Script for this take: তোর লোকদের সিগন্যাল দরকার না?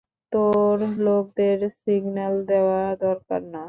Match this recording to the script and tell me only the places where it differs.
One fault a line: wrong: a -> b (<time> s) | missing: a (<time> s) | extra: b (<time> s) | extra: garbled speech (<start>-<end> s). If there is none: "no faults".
extra: দেওয়া (2.5 s)